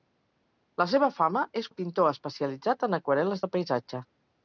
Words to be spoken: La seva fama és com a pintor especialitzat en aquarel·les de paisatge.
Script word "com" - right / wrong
wrong